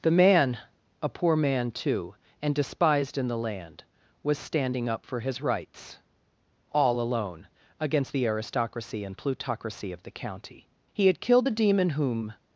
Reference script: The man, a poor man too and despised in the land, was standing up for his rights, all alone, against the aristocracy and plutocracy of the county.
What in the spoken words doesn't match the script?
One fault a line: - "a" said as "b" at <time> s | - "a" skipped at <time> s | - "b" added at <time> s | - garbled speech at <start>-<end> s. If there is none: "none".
- "He had killed the demon whom" added at 10.9 s